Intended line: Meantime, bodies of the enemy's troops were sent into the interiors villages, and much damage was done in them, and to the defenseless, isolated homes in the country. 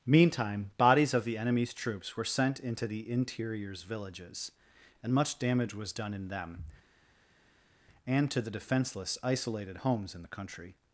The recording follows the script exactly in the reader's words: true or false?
true